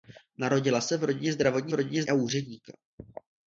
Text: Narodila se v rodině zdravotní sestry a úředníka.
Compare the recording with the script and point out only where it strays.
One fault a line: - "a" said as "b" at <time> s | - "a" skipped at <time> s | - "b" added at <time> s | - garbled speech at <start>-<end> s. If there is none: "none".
- "sestry" said as "rodině" at 1.7 s